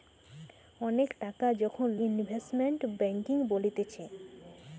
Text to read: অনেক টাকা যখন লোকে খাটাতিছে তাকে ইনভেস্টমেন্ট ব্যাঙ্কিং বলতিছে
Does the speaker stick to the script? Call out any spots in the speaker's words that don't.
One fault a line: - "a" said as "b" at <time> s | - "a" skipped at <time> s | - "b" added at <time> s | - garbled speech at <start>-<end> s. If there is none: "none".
- "লোকে খাটাতিছে তাকে" skipped at 1.9 s